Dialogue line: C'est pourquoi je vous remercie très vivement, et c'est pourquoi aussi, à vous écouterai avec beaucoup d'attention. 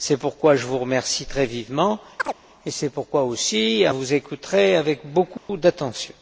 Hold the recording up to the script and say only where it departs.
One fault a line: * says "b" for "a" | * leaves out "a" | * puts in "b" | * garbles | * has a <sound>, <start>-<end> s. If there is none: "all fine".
* has a chirp, 2.2-2.3 s
* has a dropout, 5.4-5.5 s